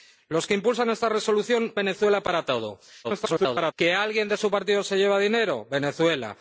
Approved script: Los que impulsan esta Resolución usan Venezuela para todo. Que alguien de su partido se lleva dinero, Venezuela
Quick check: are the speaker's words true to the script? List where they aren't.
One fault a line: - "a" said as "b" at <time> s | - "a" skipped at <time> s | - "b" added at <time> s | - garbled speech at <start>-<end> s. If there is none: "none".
- "usan" skipped at 1.7 s
- garbled speech at 3.0-3.7 s